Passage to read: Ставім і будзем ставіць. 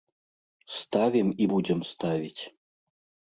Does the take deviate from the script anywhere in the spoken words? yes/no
no